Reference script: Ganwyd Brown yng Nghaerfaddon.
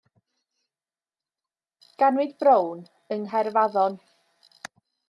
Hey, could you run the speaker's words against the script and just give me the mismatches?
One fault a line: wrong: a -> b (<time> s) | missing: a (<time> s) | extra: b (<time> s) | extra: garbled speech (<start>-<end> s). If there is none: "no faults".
no faults